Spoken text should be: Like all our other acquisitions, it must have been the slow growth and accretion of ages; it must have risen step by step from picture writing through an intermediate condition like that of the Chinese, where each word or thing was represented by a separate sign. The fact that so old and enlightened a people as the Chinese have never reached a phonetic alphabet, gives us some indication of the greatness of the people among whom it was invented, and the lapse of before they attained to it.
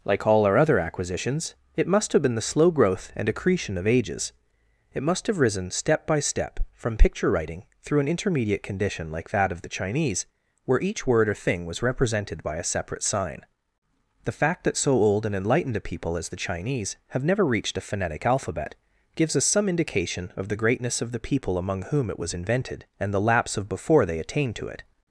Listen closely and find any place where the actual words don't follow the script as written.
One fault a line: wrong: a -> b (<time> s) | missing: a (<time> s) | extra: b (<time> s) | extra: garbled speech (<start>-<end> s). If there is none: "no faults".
no faults